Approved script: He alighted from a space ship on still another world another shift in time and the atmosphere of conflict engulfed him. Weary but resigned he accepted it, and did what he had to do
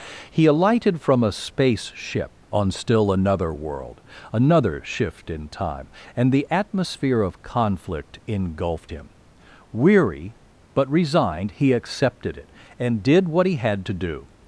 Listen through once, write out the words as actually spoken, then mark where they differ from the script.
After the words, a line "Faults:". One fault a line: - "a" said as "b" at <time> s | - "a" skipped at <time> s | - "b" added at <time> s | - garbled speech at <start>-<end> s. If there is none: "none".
He alighted from a space ship on still another world another shift in time and the atmosphere of conflict engulfed him. Weary but resigned he accepted it, and did what he had to do
Faults:
none